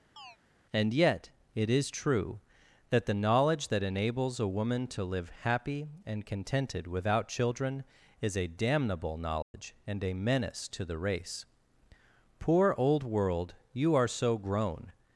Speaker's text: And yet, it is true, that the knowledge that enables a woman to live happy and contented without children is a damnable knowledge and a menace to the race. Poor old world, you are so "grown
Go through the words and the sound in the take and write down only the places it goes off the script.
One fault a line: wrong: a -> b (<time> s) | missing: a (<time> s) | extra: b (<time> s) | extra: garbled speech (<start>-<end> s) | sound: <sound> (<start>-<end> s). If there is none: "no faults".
sound: chirp (0.2-0.4 s)
sound: dropout (9.4-9.5 s)